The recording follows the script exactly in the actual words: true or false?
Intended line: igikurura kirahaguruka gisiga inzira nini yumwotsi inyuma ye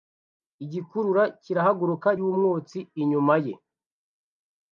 false